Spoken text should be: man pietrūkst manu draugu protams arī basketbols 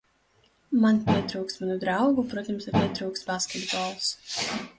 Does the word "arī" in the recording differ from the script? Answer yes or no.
yes